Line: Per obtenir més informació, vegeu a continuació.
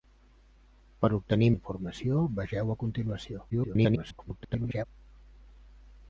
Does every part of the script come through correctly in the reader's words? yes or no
no